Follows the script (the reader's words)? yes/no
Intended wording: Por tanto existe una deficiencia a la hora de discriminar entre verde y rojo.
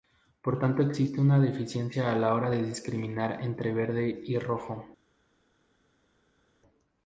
yes